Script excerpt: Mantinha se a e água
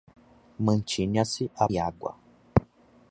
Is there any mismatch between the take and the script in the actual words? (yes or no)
no